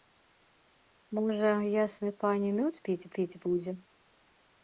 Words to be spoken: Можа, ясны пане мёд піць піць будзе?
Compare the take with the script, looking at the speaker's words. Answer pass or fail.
pass